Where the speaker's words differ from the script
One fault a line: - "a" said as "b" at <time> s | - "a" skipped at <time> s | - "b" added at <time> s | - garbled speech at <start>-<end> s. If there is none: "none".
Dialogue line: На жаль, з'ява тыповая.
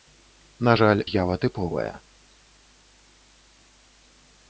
none